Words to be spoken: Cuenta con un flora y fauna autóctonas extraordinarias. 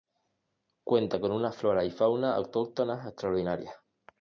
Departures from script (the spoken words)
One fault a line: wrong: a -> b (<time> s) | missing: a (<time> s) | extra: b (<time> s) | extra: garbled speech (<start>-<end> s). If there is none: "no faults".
wrong: un -> una (1.3 s)